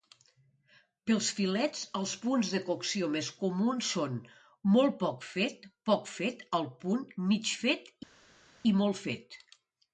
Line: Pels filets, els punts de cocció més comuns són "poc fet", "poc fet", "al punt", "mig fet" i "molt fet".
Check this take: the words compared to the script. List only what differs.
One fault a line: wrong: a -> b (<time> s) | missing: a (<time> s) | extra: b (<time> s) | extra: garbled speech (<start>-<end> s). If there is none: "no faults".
extra: molt (4.8 s)